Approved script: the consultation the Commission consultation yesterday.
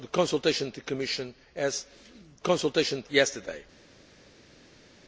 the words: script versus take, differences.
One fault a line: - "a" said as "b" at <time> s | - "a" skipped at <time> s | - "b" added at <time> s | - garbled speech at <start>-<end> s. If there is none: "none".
none